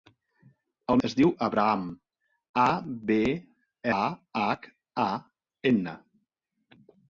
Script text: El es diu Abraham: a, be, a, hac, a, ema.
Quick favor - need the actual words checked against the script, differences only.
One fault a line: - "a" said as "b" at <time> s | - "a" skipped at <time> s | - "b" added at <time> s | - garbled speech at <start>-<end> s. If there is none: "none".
none